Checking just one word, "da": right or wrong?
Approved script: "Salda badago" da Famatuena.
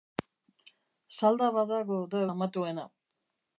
right